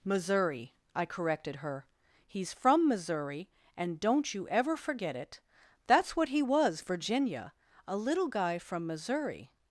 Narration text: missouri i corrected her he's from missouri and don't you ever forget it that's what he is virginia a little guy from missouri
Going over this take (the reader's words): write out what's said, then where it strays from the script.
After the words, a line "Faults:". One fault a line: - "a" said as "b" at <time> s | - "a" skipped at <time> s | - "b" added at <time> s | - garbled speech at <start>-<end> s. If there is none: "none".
missouri i corrected her he's from missouri and don't you ever forget it that's what he was virginia a little guy from missouri
Faults:
- "is" said as "was" at 6.4 s